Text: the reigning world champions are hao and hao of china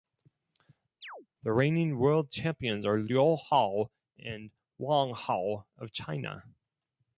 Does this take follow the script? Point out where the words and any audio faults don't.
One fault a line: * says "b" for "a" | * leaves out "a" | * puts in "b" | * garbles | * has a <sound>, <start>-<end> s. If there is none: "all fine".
* has a chirp, 1.0-1.3 s
* puts in "liu"
* puts in "wang"